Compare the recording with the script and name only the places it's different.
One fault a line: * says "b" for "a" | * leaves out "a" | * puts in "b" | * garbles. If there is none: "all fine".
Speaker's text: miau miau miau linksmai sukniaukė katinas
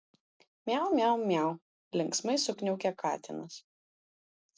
all fine